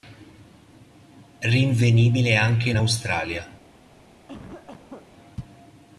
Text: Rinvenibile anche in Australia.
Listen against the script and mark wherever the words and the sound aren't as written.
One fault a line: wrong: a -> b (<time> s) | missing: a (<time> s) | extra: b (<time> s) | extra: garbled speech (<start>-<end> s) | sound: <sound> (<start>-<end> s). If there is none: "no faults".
sound: cough (4.3-5.1 s)